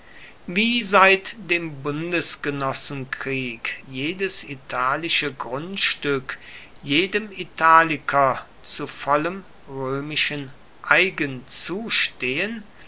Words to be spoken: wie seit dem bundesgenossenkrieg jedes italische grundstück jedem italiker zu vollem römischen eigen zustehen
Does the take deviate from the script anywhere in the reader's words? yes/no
no